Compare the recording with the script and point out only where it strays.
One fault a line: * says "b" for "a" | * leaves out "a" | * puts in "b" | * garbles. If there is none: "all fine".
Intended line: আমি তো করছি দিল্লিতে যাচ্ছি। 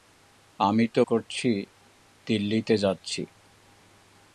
all fine